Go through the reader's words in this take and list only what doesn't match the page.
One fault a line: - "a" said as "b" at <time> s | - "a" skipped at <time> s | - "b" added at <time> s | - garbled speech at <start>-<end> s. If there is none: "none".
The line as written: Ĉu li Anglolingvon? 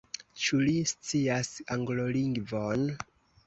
- "scias" added at 0.9 s